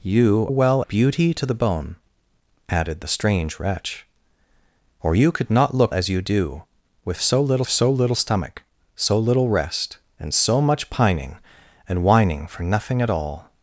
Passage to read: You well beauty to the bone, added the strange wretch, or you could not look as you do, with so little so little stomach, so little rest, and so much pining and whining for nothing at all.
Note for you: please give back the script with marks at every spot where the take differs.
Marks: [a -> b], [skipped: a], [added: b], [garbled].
You well beauty to the bone, added the strange wretch, or you could not look as you do, with so little so little stomach, so little rest, and so much pining and whining for nothing at all.